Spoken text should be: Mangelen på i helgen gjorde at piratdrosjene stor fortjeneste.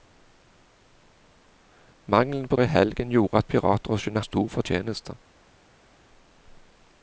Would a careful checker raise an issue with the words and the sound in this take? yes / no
no